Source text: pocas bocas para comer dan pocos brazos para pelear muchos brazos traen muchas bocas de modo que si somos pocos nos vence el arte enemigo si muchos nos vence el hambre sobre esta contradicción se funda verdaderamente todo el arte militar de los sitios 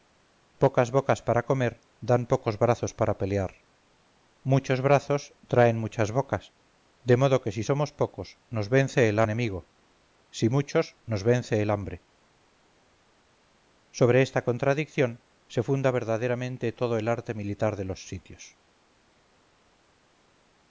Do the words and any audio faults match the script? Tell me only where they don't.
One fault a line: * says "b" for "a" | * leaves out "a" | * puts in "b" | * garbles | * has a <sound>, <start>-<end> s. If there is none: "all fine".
* leaves out "arte"